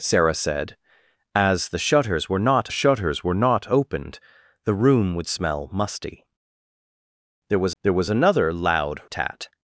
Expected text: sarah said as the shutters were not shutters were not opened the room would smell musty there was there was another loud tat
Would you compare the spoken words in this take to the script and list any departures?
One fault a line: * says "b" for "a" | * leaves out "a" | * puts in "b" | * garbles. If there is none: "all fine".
all fine